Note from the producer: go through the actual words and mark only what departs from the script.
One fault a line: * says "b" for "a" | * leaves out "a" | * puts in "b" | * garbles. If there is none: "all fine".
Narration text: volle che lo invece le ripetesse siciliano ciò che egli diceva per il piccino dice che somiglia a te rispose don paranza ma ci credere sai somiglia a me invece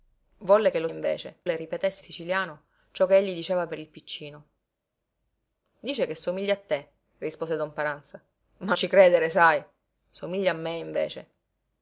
all fine